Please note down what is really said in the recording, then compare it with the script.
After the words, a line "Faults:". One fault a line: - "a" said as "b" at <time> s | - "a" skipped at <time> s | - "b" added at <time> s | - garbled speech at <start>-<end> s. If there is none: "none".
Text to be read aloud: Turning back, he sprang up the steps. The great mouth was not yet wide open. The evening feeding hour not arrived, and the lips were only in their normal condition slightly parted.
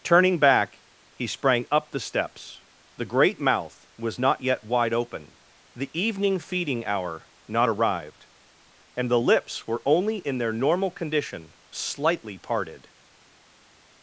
Turning back, he sprang up the steps. The great mouth was not yet wide open. The evening feeding hour not arrived, and the lips were only in their normal condition slightly parted.
Faults:
none